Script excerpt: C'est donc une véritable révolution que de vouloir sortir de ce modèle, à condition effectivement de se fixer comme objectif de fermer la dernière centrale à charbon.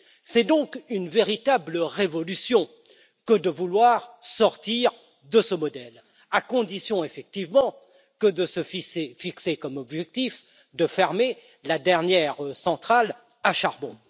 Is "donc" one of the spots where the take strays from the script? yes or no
no